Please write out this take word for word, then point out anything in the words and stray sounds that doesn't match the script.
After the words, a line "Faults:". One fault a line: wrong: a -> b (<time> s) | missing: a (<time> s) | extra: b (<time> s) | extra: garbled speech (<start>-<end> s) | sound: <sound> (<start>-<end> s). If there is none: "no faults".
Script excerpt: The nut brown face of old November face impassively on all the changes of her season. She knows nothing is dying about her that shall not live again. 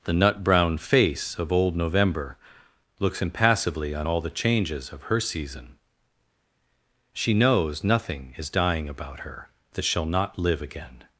The nut brown face of old November looks impassively on all the changes of her season. She knows nothing is dying about her that shall not live again.
Faults:
wrong: face -> looks (3.0 s)